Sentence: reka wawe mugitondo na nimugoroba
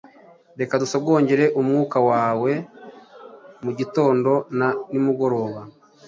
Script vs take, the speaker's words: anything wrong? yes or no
yes